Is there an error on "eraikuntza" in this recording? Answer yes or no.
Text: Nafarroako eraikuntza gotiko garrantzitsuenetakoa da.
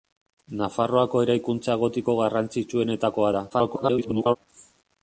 no